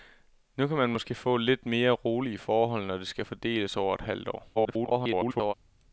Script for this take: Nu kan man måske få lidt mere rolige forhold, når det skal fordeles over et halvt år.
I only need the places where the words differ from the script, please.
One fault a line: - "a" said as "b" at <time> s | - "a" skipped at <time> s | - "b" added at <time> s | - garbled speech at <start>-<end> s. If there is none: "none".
- garbled speech at 4.5-5.5 s